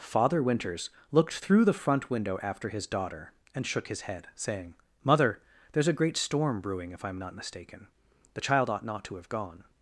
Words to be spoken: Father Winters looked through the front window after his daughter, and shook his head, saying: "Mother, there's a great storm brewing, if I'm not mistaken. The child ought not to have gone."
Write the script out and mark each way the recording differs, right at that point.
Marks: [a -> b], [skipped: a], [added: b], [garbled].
Father Winters looked through the front window after his daughter, and shook his head, saying: "Mother, there's a great storm brewing, if I'm not mistaken. The child ought not to have gone."